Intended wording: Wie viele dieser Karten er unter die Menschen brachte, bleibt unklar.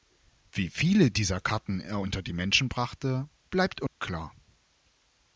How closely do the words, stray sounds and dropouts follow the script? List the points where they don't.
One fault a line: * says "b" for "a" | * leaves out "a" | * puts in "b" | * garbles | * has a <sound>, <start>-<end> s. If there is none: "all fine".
* has a dropout, 3.9-4.0 s